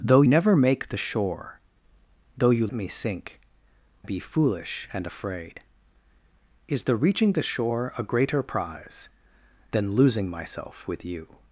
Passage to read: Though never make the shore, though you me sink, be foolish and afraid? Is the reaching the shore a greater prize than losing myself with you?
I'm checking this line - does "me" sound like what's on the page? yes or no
yes